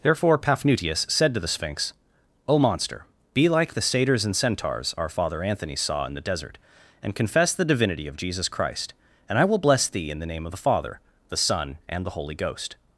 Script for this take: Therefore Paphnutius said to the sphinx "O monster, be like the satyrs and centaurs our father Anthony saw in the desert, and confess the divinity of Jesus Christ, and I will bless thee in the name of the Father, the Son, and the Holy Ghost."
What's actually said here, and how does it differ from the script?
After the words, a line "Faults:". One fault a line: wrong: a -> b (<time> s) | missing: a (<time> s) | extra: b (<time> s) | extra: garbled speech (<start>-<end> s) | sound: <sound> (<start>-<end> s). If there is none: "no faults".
Therefore Paphnutius said to the sphinx "O monster, be like the satyrs and centaurs our father Anthony saw in the desert, and confess the divinity of Jesus Christ, and I will bless thee in the name of the Father, the Son, and the Holy Ghost."
Faults:
no faults